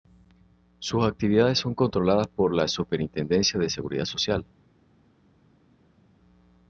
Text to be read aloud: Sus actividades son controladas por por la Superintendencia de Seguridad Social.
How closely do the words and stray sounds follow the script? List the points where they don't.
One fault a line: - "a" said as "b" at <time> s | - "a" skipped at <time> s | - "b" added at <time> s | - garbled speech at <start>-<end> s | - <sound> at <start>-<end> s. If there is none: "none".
- "por" skipped at 2.5 s